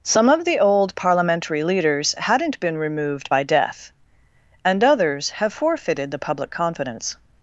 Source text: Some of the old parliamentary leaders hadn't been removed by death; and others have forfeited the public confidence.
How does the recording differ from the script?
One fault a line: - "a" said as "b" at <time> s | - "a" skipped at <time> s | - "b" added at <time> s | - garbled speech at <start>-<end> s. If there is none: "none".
none